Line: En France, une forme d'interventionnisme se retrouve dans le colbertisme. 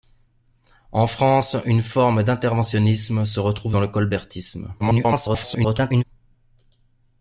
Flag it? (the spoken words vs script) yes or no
yes